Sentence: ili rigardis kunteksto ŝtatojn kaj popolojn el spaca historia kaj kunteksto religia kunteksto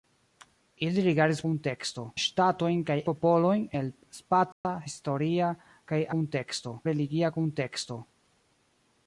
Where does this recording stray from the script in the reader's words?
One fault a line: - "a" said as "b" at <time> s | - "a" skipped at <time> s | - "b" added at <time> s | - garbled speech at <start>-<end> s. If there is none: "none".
none